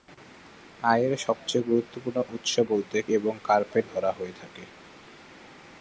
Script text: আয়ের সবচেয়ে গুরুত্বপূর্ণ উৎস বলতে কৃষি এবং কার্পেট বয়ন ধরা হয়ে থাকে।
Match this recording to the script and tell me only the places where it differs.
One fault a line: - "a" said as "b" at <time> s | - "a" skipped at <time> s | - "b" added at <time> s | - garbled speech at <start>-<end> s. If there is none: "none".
- "কৃষি" skipped at 3.0 s
- "বয়ন" skipped at 3.8 s